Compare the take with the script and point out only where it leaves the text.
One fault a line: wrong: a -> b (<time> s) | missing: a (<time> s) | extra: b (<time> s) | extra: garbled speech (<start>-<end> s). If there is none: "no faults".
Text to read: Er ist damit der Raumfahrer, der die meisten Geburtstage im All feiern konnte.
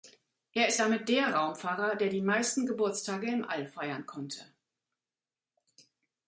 no faults